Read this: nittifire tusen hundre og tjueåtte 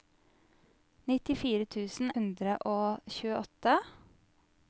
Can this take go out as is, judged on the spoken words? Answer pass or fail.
pass